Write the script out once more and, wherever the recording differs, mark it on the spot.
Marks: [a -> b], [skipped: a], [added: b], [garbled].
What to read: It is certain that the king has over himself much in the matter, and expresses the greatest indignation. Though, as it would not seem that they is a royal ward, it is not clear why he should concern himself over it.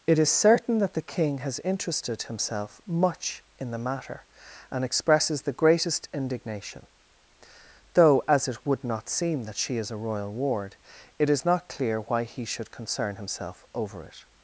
It is certain that the king has [over -> interested] himself much in the matter, and expresses the greatest indignation. Though, as it would not seem that [they -> she] is a royal ward, it is not clear why he should concern himself over it.